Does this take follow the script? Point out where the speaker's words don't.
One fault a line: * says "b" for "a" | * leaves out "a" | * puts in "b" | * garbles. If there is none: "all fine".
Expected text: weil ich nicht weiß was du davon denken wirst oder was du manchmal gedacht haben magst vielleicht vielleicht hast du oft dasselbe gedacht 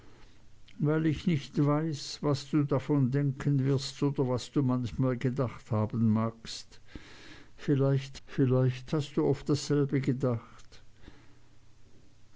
all fine